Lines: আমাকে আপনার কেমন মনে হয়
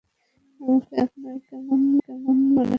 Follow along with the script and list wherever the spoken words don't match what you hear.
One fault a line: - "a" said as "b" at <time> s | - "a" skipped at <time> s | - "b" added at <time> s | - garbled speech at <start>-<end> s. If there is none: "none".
- "কেমন মনে" added at 2.0 s